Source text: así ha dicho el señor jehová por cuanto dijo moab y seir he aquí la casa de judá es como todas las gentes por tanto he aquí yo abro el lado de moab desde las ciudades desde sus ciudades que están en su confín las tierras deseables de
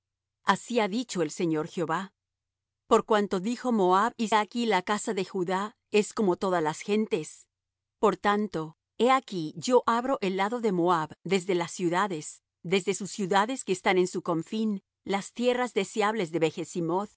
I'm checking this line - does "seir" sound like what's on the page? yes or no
no